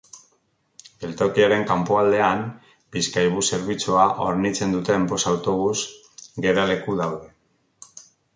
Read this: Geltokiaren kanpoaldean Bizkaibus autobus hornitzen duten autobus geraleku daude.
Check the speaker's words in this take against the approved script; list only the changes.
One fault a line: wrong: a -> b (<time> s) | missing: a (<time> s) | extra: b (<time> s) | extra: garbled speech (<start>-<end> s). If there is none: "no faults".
wrong: autobus -> zerbitzua (3.6 s)
extra: bost (5.1 s)